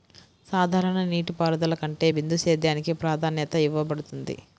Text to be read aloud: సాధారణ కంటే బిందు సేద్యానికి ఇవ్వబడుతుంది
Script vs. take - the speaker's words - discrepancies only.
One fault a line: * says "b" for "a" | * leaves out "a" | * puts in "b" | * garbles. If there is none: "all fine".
* puts in "నీటిపారుదల"
* puts in "ప్రాధాన్యత"